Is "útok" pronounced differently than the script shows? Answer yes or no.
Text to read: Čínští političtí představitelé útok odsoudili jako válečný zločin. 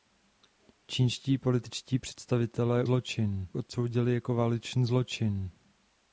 yes